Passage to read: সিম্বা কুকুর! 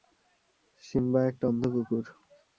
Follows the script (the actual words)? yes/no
no